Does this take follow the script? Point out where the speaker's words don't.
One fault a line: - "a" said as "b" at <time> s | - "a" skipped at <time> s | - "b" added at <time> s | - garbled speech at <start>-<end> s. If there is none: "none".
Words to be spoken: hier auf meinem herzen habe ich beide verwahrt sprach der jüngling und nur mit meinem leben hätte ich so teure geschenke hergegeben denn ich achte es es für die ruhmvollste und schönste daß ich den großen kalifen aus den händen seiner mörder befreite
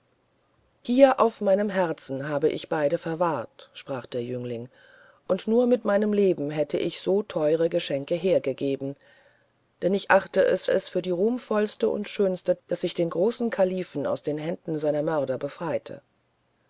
none